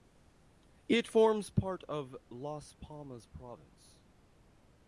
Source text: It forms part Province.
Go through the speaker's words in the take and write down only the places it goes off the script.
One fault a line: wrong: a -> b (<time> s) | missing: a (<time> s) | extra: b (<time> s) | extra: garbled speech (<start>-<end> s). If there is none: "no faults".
extra: of Las Palmas (1.8 s)